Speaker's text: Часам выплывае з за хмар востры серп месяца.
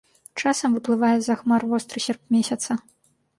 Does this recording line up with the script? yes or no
yes